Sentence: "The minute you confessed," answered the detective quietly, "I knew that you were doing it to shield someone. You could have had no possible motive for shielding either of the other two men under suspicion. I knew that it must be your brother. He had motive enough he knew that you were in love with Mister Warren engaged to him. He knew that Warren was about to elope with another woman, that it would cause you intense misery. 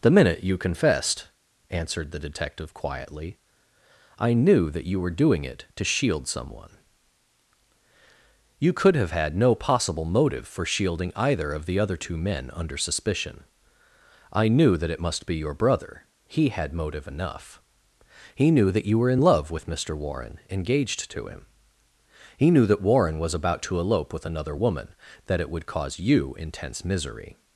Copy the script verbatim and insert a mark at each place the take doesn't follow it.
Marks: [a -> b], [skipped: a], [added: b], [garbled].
"The minute you confessed," answered the detective quietly, "I knew that you were doing it to shield someone. You could have had no possible motive for shielding either of the other two men under suspicion. I knew that it must be your brother. He had motive enough he knew that you were in love with Mister Warren engaged to him. He knew that Warren was about to elope with another woman, that it would cause you intense misery.